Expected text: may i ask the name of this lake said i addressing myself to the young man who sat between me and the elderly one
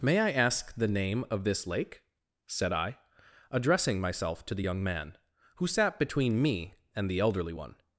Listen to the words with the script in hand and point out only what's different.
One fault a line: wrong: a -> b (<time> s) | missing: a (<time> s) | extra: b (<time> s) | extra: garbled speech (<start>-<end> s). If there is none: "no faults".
no faults